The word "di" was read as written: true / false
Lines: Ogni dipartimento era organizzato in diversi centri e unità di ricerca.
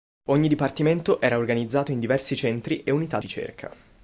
false